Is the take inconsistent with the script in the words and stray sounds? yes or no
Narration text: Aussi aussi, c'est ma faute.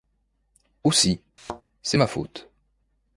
yes